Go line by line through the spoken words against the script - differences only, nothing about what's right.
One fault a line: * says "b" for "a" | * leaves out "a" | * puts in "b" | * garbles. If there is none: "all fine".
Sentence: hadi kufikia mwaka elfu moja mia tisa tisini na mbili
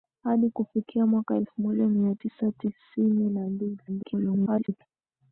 * garbles